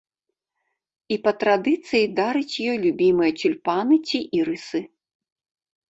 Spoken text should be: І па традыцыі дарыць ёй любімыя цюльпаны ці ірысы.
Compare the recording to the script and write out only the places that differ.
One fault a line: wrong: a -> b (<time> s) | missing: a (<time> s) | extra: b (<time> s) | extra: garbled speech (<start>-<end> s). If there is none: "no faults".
no faults